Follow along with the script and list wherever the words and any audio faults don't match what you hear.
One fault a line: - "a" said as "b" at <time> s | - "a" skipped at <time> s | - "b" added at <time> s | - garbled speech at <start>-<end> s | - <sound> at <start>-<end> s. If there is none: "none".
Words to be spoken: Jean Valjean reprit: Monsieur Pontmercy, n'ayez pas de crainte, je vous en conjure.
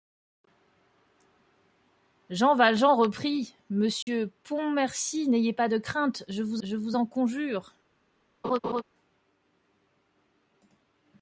- dropout at 4.0-4.1 s
- "je vous" added at 6.6 s
- laugh at 8.4-8.8 s